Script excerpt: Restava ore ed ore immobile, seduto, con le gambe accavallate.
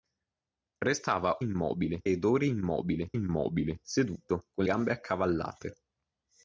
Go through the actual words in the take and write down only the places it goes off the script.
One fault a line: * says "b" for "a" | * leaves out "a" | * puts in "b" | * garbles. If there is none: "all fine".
* says "immobile" for "ore"
* puts in "immobile"
* leaves out "le"